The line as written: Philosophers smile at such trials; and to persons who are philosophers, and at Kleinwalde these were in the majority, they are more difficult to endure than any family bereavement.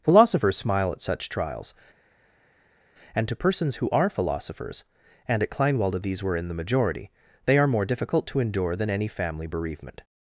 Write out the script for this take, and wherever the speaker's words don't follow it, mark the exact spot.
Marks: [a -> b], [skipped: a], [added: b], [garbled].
Philosophers smile at such trials; and to persons who are philosophers, and at Kleinwalde these were in the majority, they are more difficult to endure than any family bereavement.